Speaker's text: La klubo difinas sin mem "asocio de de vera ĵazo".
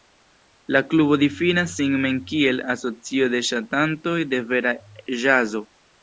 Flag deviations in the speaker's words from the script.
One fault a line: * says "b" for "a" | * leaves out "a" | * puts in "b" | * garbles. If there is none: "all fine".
* puts in "kiel"
* puts in "ŝatantoj"